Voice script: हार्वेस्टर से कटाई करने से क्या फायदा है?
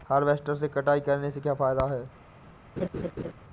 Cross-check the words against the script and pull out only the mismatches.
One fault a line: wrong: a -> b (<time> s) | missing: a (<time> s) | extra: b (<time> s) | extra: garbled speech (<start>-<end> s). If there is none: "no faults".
no faults